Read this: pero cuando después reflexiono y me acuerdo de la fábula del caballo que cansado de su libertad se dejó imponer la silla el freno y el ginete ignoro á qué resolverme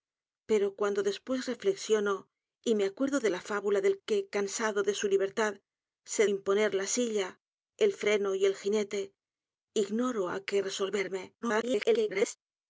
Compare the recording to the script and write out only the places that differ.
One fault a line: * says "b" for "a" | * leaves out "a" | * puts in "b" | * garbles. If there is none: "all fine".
* leaves out "caballo"
* leaves out "dejó"
* garbles